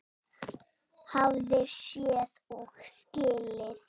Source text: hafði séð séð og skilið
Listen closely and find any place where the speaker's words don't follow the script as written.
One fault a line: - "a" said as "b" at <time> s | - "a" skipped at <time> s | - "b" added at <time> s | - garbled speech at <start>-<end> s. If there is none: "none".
- "séð" skipped at 2.4 s